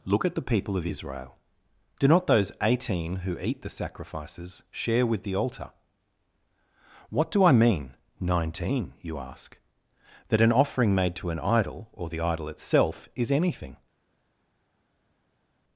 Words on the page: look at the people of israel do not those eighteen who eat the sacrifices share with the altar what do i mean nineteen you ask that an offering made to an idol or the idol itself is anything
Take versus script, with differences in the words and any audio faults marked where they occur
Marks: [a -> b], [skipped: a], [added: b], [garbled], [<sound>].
look at the people of israel do not those eighteen who eat the sacrifices share with the altar what do i mean nineteen you ask that an offering made to an idol or the idol itself is anything